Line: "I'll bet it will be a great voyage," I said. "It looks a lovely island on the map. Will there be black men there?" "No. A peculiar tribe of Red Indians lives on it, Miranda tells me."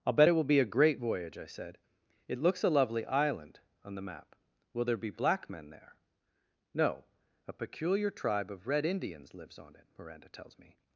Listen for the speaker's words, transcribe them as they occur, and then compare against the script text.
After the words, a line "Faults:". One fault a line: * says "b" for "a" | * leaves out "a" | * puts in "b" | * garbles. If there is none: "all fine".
"I'll bet it will be a great voyage," I said. "It looks a lovely island on the map. Will there be black men there?" "No. A peculiar tribe of Red Indians lives on it, Miranda tells me."
Faults:
all fine